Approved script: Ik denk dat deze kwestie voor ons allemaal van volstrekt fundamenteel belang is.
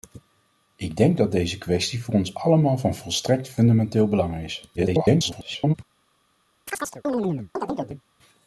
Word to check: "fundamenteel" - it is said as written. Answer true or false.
true